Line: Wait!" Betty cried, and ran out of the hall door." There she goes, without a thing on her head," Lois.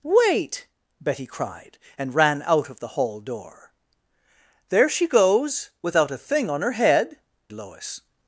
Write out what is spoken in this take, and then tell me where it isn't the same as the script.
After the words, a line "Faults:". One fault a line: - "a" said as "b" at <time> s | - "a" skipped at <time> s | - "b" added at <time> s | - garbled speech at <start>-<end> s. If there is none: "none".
Wait!" Betty cried, and ran out of the hall door." There she goes, without a thing on her head," Lois.
Faults:
none